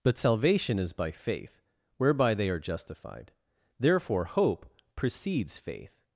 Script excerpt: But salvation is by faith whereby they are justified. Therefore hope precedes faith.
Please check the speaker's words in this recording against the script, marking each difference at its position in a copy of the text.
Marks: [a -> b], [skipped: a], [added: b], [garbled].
But salvation is by faith whereby they are justified. Therefore hope precedes faith.